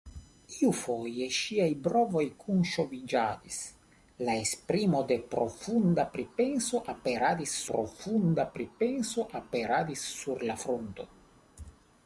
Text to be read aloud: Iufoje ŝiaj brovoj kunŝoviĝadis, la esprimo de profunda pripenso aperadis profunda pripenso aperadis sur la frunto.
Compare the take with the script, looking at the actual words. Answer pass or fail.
pass